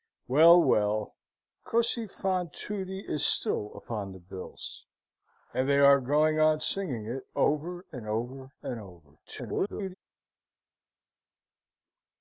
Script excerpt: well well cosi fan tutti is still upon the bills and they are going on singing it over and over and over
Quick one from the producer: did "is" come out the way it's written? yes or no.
yes